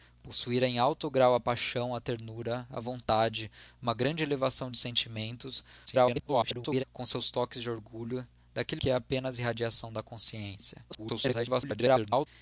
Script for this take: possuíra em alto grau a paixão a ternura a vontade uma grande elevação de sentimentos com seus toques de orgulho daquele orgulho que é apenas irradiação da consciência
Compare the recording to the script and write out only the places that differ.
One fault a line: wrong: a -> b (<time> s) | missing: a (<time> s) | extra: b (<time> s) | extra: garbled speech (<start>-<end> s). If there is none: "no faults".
extra: garbled speech (5.9-6.8 s)
missing: orgulho (8.8 s)
extra: garbled speech (10.9-12.3 s)